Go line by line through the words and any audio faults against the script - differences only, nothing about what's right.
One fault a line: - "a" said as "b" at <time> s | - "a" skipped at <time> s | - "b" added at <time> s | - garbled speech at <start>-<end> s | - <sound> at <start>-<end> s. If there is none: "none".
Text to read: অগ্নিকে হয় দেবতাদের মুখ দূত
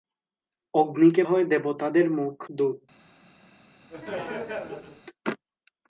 - laugh at 3.9-5.0 s